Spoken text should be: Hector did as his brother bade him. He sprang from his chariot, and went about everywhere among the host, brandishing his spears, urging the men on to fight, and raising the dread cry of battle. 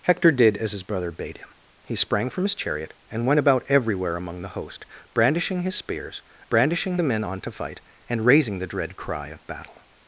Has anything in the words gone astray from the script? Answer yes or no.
yes